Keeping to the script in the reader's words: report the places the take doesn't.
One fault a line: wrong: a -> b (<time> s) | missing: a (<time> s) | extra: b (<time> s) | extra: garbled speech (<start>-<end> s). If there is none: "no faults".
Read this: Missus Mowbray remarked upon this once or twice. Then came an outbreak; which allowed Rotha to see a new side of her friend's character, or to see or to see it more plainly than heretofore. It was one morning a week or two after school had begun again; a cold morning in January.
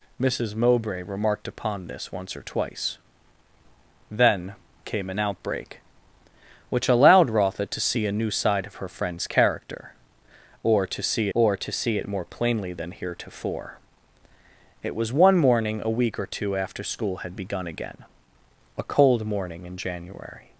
no faults